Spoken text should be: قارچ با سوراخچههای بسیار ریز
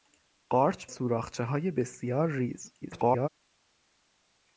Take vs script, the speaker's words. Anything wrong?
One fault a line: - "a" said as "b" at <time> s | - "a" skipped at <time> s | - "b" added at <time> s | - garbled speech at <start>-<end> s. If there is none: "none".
- "با" skipped at 0.9 s
- garbled speech at 2.8-3.3 s